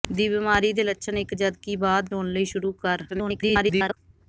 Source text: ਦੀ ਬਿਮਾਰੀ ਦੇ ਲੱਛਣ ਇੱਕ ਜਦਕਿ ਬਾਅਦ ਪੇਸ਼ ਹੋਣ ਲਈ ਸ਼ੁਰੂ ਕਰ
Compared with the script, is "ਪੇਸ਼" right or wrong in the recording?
wrong